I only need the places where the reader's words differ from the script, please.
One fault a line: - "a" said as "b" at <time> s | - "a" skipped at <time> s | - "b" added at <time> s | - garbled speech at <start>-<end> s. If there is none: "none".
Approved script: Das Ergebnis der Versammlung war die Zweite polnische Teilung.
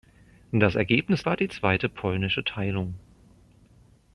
- "der Versammlung" skipped at 1.2 s